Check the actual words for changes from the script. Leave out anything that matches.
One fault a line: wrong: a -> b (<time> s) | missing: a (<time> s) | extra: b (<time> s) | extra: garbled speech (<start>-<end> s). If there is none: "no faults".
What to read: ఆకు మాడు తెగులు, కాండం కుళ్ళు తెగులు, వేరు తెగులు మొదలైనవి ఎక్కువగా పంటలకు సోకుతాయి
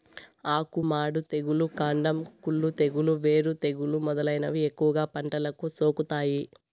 no faults